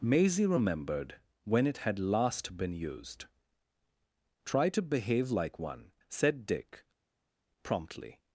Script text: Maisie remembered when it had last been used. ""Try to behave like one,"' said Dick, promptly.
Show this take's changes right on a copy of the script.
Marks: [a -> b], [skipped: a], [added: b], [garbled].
Maisie remembered when it had last been used. ""Try to behave like one,"' said Dick, promptly.